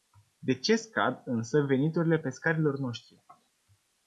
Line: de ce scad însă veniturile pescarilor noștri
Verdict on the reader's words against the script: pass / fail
pass